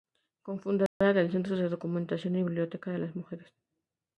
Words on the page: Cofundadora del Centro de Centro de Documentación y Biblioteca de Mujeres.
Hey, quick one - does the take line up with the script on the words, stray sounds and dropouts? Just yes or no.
no